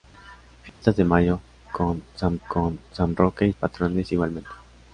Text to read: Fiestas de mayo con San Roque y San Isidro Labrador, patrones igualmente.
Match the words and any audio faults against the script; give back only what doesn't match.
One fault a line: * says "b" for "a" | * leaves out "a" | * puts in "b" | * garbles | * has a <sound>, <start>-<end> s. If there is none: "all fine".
* has a dropout, 0.7-0.8 s
* says "con" for "Roque y"
* says "Roque y" for "Isidro Labrador"